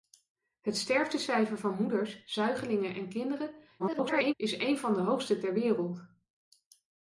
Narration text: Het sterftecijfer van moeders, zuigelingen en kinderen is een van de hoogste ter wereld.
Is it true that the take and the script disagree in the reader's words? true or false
true